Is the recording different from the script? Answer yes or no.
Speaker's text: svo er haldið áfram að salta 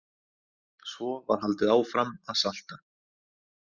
yes